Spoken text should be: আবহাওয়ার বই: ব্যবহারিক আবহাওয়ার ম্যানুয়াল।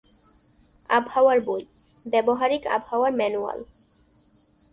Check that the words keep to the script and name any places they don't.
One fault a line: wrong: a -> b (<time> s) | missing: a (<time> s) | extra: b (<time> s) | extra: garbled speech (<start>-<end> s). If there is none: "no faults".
no faults